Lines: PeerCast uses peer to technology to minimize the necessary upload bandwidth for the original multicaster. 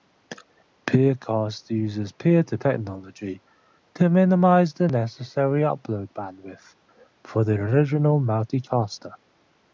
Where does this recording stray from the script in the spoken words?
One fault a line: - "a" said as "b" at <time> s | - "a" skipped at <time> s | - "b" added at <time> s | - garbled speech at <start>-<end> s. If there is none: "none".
none